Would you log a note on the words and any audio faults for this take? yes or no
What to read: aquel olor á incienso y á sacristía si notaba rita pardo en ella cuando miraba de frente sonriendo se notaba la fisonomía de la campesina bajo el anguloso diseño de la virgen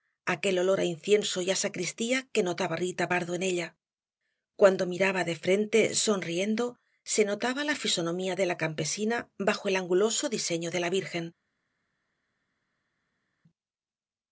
yes